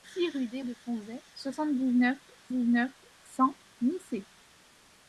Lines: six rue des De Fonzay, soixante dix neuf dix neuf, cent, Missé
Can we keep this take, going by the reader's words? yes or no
yes